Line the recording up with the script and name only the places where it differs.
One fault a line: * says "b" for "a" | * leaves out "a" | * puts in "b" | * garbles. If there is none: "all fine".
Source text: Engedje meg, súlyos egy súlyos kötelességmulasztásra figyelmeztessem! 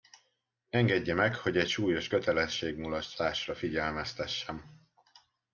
* says "hogy" for "súlyos"